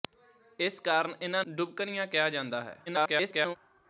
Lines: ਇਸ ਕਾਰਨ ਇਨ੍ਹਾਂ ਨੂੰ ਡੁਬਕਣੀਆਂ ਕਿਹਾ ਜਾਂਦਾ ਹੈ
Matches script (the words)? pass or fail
fail